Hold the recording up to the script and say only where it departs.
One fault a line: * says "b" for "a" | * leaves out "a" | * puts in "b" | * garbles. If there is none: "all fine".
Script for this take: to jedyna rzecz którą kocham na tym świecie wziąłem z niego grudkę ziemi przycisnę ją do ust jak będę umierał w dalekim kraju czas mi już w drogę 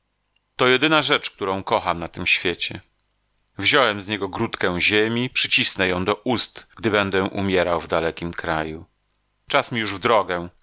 * says "gdy" for "jak"